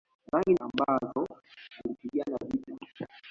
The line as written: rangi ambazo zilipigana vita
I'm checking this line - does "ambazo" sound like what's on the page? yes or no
yes